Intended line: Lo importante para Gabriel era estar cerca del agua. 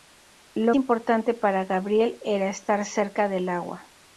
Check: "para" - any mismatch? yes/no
no